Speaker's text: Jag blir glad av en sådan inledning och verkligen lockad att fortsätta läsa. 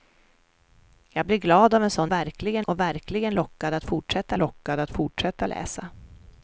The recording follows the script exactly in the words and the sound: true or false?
false